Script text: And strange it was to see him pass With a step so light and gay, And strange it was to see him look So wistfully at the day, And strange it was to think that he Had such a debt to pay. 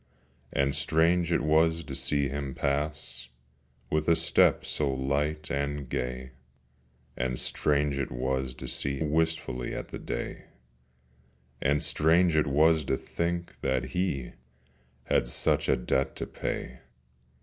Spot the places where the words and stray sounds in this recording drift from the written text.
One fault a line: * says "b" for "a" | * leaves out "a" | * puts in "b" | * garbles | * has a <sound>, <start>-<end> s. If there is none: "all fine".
* leaves out "him look So"